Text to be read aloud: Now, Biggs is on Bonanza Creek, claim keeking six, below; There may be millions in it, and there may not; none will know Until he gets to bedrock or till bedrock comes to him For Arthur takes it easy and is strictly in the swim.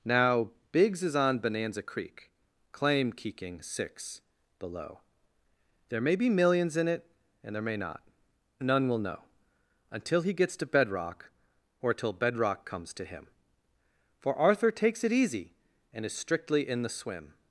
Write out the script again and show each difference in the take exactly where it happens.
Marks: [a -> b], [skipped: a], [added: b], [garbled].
Now, Biggs is on Bonanza Creek, claim keeking six, below; There may be millions in it, and there may not; none will know Until he gets to bedrock or till bedrock comes to him For Arthur takes it easy and is strictly in the swim.